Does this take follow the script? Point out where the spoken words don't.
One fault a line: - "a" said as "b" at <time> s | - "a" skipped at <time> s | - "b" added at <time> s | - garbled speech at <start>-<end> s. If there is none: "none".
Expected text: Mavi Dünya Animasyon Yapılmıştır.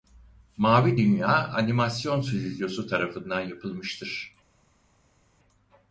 - "Stüdyosu tarafından" added at 2.2 s